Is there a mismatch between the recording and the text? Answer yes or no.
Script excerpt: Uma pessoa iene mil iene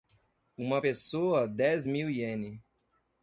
yes